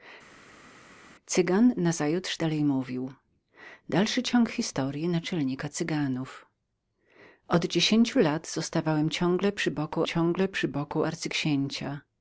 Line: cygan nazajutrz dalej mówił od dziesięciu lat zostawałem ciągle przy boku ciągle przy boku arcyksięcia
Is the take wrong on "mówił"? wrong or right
right